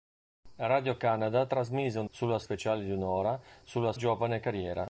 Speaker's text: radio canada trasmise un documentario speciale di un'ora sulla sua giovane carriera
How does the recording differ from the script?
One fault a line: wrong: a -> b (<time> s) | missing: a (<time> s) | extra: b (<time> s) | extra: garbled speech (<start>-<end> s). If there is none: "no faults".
wrong: documentario -> sulla (2.1 s)
missing: sua (3.9 s)